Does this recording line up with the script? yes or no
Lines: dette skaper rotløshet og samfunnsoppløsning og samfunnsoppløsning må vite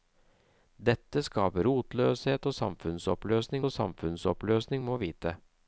yes